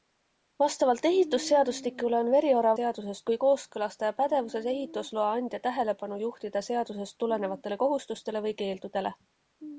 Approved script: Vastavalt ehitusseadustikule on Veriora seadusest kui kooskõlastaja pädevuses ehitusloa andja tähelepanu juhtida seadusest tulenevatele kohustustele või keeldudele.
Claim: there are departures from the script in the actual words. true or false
false